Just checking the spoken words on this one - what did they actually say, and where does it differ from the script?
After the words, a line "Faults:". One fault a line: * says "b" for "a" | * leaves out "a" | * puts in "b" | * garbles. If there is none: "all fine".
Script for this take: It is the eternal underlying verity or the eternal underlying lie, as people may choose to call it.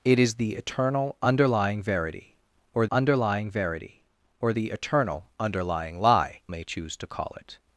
It is the eternal underlying verity or underlying verity or the eternal underlying lie, may choose to call it.
Faults:
* puts in "underlying verity or"
* leaves out "as people"